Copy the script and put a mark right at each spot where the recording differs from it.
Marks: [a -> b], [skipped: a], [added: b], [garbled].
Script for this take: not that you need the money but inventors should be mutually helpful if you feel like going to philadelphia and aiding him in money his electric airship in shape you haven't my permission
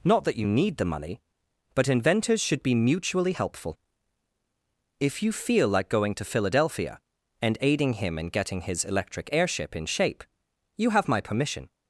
not that you need the money but inventors should be mutually helpful if you feel like going to philadelphia and aiding him in [money -> getting] his electric airship in shape you [haven't -> have] my permission